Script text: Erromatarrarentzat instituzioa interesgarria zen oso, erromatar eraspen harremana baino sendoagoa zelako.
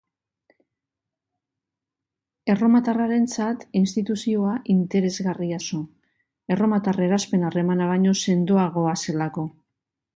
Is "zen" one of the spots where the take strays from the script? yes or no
yes